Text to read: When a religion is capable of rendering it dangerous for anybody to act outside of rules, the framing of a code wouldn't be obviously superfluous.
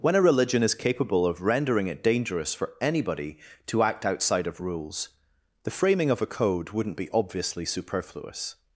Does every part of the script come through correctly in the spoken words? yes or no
yes